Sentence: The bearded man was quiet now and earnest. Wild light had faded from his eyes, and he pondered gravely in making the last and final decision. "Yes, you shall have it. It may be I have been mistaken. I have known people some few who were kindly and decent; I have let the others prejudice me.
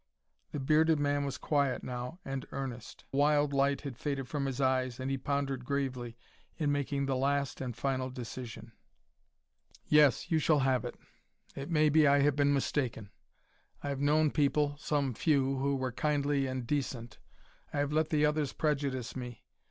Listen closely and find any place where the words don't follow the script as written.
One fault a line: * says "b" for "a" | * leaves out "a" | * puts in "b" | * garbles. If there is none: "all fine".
all fine